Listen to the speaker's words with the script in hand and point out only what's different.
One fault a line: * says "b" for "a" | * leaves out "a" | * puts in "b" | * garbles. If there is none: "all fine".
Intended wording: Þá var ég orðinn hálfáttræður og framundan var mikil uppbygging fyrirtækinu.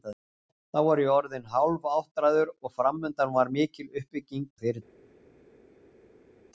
all fine